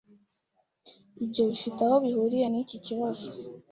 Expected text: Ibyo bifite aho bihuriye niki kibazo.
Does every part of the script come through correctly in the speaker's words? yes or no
yes